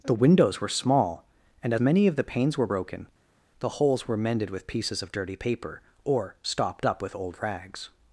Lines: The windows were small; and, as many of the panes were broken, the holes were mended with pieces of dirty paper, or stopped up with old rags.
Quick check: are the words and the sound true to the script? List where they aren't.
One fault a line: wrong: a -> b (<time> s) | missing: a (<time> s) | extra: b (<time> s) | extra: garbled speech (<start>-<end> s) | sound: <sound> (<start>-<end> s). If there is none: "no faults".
missing: as (1.8 s)